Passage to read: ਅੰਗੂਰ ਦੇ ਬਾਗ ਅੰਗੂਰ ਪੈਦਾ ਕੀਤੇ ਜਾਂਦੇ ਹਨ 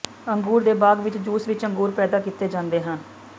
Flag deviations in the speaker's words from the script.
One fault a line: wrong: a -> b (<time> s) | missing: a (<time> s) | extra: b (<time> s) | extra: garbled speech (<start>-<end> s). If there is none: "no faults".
extra: ਵਿਚ ਜੂਸ ਵਿਚ (1.0 s)